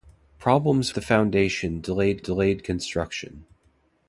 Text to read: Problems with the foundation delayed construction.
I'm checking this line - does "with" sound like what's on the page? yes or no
no